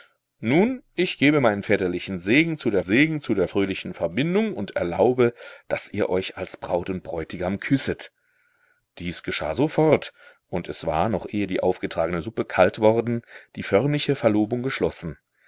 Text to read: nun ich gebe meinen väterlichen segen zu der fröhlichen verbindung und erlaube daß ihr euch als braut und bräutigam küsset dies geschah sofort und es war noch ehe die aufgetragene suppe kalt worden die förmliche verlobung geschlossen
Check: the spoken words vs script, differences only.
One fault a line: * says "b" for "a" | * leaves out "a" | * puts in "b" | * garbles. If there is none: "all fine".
* puts in "segen zu der"